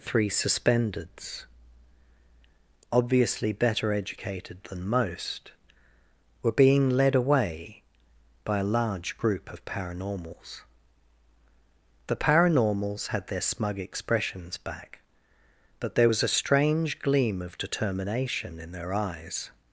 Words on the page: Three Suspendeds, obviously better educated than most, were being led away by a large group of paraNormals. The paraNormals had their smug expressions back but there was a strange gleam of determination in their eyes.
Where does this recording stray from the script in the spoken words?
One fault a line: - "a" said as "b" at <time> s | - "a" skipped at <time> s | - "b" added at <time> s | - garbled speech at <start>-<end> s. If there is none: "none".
none